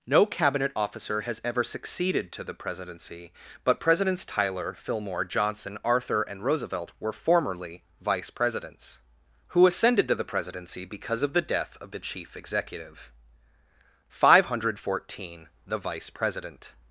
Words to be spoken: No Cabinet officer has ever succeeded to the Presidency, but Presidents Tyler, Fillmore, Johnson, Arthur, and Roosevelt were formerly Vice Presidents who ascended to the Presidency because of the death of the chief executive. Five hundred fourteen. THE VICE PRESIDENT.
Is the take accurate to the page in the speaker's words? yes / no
yes